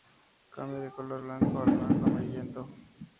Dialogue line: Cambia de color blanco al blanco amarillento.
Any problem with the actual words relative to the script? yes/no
no